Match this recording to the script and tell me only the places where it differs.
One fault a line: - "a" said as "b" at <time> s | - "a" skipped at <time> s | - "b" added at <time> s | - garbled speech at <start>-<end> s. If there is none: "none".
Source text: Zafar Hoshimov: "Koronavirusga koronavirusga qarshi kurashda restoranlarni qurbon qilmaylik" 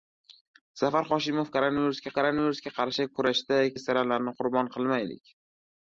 none